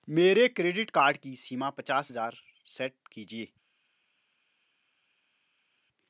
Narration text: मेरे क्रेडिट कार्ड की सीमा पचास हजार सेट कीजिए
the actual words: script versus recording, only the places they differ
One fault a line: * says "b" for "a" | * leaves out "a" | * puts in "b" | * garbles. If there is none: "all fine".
all fine